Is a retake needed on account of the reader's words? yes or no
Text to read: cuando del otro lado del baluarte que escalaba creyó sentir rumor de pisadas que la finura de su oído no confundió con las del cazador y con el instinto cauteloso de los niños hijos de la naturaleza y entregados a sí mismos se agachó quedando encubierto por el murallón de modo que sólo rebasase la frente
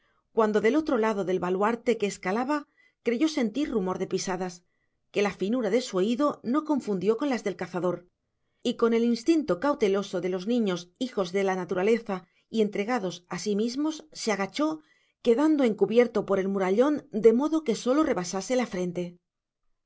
no